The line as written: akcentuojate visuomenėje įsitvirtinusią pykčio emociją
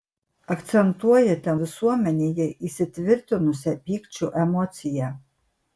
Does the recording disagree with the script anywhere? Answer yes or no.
no